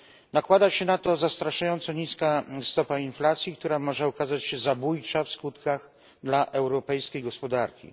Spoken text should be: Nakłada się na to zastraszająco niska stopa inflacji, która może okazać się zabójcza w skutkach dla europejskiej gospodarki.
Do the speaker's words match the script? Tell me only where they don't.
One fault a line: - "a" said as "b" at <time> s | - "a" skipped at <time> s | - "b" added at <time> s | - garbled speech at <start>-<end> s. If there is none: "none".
none